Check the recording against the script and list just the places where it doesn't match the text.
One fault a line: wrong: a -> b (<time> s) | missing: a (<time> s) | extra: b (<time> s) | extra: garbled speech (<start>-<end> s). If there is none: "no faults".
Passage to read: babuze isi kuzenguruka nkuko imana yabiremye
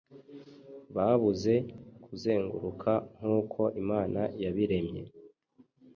missing: isi (1.5 s)